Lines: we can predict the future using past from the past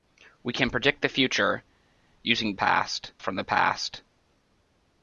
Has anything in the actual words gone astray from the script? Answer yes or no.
no